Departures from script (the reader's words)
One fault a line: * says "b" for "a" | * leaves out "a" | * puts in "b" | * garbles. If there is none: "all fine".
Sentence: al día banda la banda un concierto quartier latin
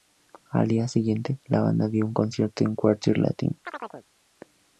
* says "siguiente" for "banda"
* puts in "dio"
* puts in "en"